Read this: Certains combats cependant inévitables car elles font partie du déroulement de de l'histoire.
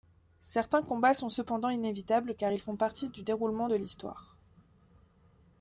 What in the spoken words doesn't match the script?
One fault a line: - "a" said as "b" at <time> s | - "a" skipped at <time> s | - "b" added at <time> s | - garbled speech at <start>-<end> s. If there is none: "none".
- "sont" added at 1.1 s
- "elles" said as "ils" at 2.5 s
- "de" skipped at 3.8 s